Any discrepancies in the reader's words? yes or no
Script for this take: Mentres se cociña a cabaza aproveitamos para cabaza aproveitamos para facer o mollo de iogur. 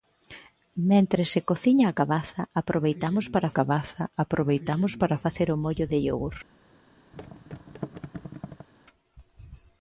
no